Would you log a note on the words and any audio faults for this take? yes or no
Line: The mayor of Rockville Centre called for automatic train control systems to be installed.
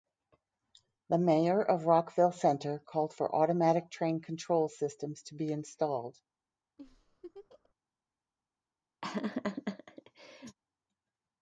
yes